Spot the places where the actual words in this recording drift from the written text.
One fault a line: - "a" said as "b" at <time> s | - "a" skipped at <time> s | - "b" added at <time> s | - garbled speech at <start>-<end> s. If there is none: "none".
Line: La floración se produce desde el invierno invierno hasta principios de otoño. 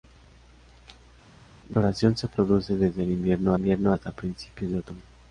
none